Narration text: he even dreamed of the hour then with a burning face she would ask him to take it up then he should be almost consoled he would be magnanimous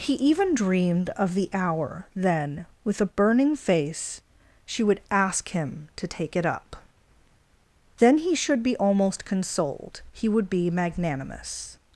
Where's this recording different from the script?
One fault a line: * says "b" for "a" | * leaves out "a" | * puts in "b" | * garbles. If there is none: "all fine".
all fine